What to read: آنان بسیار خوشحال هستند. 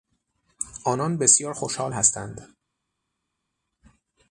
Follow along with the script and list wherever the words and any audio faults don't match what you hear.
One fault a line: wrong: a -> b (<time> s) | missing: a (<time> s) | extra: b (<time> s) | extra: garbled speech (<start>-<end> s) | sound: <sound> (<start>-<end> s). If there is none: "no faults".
no faults